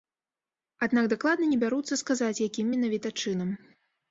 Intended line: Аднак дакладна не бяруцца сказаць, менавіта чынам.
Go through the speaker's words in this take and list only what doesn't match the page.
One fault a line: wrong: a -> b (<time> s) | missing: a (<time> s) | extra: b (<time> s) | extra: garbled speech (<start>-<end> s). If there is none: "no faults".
extra: якім (2.5 s)